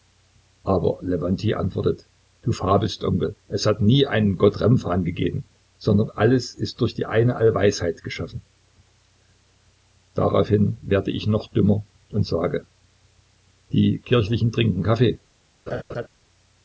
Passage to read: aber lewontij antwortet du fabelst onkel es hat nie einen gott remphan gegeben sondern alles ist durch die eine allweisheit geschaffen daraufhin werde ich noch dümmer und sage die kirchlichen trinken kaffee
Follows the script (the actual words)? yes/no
yes